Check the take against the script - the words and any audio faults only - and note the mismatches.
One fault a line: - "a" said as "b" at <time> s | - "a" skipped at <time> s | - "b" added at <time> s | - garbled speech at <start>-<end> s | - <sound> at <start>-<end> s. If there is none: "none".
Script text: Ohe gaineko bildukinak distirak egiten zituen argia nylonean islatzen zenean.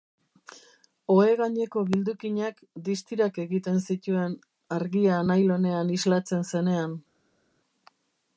none